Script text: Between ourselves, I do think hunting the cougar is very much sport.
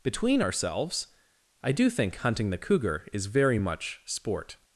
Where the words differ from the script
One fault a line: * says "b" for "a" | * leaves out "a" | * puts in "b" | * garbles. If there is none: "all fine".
all fine